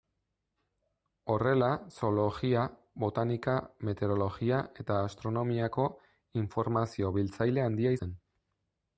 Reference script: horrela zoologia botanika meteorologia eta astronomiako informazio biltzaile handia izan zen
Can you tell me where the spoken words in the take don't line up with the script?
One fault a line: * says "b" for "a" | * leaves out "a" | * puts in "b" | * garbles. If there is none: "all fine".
* leaves out "izan"